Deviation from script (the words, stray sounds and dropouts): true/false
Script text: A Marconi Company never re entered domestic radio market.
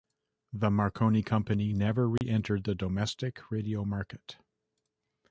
true